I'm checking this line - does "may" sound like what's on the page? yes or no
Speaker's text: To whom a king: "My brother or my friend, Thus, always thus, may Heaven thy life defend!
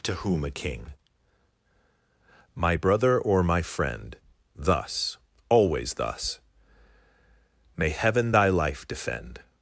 yes